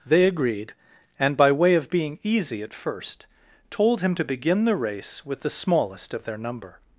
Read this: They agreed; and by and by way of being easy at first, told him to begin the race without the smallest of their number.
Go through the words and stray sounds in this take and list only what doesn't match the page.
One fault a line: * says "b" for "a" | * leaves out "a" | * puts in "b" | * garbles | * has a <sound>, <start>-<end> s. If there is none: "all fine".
* leaves out "and by"
* says "with" for "without"